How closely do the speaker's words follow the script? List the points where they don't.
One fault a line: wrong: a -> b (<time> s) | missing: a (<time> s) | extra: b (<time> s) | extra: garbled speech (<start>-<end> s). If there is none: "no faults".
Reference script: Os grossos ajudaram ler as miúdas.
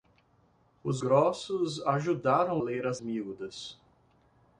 no faults